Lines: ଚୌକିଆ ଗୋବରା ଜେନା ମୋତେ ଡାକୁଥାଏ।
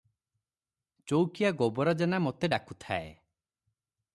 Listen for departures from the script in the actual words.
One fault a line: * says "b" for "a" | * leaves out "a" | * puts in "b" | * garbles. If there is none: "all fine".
all fine